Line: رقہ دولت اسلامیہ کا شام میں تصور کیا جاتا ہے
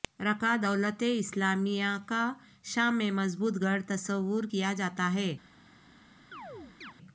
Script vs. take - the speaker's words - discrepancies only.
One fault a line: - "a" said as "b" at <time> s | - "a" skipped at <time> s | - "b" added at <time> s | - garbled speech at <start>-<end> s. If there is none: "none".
- "مضبوط گڑھ" added at 3.1 s